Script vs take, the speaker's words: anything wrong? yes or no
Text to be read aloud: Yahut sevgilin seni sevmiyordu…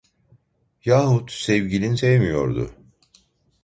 yes